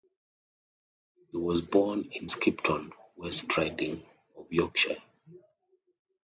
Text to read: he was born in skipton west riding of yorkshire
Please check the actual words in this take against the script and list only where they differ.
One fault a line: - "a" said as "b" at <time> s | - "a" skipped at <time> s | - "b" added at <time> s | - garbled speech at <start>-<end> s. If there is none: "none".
none